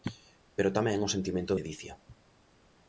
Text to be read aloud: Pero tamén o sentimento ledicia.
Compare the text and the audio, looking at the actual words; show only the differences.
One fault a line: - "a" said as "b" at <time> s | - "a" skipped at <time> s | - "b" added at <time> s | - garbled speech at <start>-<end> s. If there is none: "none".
none